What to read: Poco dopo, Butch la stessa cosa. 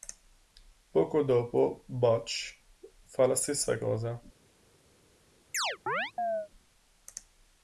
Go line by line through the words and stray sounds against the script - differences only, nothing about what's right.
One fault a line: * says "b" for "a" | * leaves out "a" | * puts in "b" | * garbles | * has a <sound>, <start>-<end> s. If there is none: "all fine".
* puts in "fa"
* has a chirp, 5.5-6.5 s